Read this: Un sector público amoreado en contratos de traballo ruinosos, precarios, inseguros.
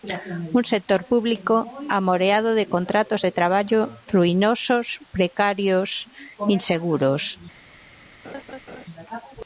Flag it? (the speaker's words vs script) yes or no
yes